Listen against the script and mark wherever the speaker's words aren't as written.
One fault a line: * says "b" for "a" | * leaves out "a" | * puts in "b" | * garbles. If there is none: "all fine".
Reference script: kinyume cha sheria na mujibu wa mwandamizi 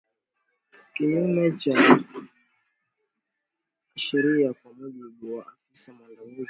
* says "kwa" for "na"
* puts in "afisa"